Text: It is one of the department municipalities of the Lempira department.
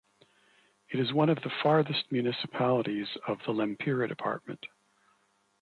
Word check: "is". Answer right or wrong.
right